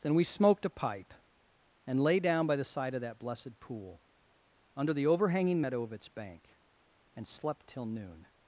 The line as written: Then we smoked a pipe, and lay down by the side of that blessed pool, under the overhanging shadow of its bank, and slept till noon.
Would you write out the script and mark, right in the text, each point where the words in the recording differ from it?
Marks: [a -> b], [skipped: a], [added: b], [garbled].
Then we smoked a pipe, and lay down by the side of that blessed pool, under the overhanging [shadow -> meadow] of its bank, and slept till noon.